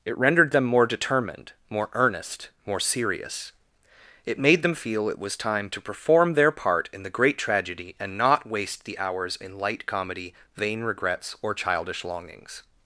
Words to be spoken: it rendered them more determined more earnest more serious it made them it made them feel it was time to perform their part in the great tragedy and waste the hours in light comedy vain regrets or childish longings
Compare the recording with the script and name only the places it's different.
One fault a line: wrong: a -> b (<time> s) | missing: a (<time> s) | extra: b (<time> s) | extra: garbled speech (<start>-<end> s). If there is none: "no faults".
missing: it made them (4.8 s)
extra: not (8.2 s)